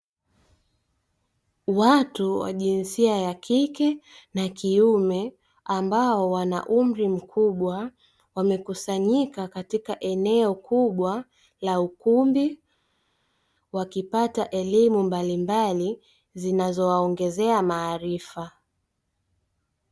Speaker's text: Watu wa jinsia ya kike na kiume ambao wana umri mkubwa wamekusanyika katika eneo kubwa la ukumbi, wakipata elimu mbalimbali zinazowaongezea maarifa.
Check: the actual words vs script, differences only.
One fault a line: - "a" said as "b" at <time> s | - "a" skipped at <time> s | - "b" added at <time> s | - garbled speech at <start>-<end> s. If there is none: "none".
none